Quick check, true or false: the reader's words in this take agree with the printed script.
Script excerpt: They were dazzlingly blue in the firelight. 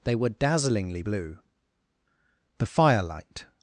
false